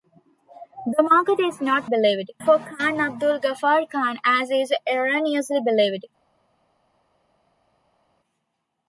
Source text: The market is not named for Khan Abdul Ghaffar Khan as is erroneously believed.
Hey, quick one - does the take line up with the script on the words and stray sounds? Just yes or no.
no